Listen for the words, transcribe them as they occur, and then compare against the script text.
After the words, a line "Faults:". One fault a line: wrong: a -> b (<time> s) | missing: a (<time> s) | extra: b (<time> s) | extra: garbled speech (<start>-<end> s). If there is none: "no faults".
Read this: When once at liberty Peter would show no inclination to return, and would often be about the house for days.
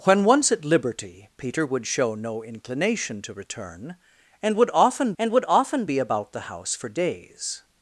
When once at liberty Peter would show no inclination to return, and would often and would often be about the house for days.
Faults:
extra: and would often (5.2 s)